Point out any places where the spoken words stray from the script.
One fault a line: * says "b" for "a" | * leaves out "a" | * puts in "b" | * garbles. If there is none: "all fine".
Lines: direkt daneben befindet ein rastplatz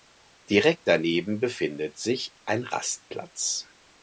* puts in "sich"